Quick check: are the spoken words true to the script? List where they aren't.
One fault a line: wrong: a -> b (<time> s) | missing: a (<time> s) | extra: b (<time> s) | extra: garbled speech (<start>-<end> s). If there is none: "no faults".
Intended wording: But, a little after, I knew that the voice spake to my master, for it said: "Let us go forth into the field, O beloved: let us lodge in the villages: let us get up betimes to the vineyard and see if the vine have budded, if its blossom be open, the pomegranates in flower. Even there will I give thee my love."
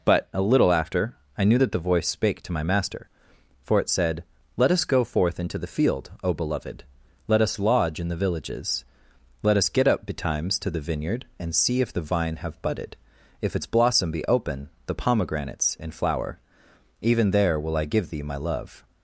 no faults